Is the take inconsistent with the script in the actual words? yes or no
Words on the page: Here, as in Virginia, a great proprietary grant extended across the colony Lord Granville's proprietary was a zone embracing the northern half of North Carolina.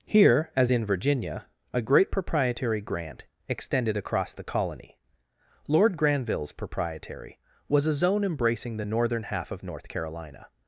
no